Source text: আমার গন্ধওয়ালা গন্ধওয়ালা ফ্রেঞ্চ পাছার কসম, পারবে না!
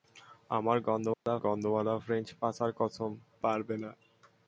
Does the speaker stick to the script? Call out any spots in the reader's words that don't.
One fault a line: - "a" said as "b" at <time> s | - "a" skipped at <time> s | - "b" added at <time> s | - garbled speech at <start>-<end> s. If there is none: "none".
none